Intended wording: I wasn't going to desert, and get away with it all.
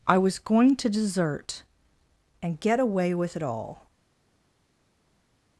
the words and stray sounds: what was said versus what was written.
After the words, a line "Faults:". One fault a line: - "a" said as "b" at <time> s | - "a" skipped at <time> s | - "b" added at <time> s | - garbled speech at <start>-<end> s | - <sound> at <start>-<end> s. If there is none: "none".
I was going to desert, and get away with it all.
Faults:
- "wasn't" said as "was" at 0.2 s